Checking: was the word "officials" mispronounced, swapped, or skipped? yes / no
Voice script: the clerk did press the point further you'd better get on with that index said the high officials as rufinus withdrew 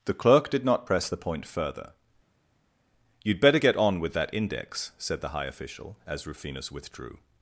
yes